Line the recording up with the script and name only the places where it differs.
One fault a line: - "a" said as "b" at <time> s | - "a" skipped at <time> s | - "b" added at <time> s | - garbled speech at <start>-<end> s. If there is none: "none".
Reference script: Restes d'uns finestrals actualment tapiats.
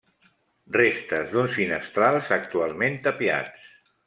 none